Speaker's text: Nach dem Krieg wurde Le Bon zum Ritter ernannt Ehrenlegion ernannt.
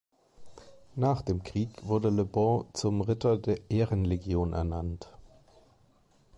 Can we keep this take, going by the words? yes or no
no